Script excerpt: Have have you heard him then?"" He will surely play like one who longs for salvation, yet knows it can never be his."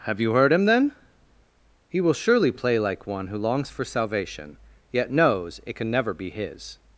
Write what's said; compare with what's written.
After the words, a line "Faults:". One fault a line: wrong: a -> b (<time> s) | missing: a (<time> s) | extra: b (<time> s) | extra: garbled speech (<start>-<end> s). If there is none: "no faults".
Have you heard him then?"" He will surely play like one who longs for salvation, yet knows it can never be his."
Faults:
missing: have (0.2 s)